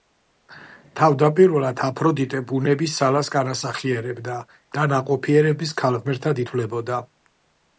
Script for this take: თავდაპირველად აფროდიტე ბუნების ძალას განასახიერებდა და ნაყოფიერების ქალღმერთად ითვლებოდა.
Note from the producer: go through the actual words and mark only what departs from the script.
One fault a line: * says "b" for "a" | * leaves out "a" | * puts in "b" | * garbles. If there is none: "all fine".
all fine